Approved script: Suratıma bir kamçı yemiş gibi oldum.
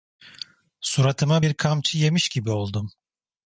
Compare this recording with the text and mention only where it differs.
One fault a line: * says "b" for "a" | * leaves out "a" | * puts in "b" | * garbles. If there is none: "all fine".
all fine